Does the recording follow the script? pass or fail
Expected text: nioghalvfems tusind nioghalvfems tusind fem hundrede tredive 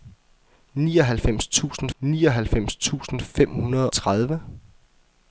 pass